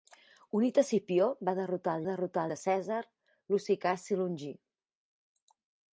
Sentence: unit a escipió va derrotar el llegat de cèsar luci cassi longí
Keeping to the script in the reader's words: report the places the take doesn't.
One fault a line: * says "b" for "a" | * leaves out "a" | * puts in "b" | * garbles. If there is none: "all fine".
* says "derrotar" for "llegat"